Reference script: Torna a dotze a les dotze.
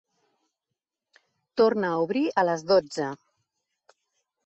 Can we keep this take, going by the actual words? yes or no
no